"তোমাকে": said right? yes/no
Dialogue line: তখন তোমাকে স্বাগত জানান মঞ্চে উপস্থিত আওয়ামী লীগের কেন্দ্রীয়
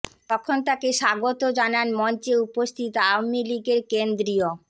no